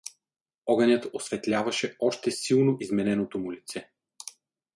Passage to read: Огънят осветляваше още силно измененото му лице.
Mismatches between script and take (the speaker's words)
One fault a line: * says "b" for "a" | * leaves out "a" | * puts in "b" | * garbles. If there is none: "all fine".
all fine